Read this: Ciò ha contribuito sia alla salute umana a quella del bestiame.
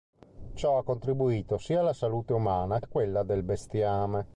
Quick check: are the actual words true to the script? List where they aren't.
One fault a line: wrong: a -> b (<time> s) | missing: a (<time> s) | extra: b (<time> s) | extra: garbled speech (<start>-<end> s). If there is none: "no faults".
no faults